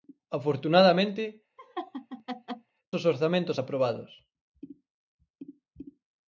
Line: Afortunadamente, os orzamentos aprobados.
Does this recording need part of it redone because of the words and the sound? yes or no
yes